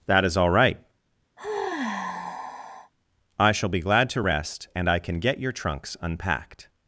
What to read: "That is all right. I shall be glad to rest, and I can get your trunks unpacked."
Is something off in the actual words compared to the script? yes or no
no